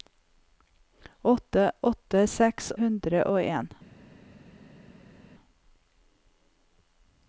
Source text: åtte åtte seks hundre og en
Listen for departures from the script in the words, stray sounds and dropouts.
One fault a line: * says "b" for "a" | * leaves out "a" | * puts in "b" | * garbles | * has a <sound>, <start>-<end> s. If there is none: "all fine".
all fine